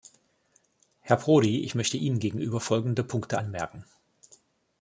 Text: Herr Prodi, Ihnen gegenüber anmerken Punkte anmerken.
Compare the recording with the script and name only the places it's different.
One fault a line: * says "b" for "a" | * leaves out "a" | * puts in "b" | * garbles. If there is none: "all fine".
* puts in "ich möchte"
* says "folgende" for "anmerken"